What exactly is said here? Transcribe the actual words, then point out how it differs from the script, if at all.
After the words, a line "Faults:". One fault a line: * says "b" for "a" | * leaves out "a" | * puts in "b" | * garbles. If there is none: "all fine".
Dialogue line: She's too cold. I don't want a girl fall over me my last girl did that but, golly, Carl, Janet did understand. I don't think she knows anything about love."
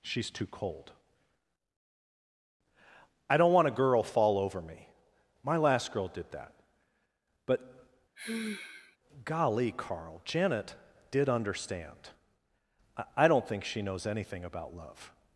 She's too cold. I don't want a girl fall over me my last girl did that but, golly, Carl, Janet did understand. I don't think she knows anything about love."
Faults:
all fine